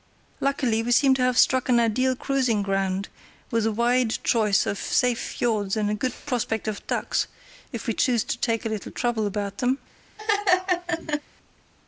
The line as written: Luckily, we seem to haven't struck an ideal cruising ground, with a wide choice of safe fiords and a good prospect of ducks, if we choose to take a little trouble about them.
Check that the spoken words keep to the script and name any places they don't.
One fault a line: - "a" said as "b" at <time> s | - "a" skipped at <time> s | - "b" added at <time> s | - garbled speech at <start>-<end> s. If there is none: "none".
- "haven't" said as "have" at 1.2 s